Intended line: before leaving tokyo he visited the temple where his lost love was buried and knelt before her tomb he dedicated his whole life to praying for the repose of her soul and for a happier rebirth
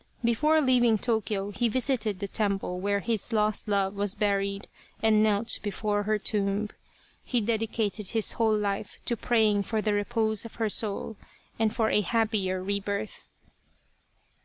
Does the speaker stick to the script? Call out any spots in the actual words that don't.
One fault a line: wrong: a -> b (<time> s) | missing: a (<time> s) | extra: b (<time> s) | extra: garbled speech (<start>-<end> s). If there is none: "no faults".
no faults